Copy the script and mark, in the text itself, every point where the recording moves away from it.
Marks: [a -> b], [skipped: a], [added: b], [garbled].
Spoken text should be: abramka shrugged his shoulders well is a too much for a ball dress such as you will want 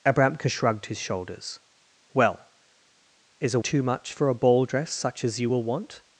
abramka shrugged his shoulders well is a too much for a ball dress such as you will want